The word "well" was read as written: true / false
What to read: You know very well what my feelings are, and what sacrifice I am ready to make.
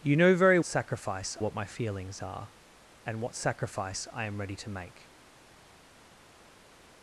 false